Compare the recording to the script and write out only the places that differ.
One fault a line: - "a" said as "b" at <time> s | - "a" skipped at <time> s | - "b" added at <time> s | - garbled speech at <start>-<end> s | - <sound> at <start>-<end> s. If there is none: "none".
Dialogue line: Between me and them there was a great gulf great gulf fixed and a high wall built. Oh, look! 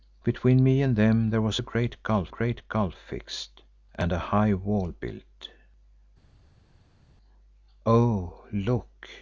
none